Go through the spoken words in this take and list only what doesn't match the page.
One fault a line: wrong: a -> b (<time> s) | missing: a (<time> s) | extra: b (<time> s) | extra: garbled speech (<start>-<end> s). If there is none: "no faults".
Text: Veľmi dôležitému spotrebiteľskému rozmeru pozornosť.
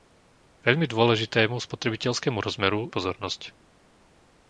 no faults